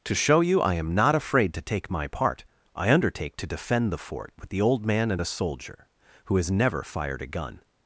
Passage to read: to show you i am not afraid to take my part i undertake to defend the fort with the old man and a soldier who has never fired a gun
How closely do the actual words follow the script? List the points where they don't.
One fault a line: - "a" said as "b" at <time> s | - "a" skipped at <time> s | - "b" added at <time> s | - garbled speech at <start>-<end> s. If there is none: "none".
none